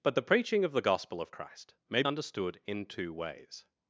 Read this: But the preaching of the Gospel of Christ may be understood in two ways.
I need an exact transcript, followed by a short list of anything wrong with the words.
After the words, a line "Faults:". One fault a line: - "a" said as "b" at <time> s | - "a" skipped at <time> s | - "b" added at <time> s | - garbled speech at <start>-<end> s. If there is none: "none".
But the preaching of the Gospel of Christ may understood in two ways.
Faults:
- "be" skipped at 2.0 s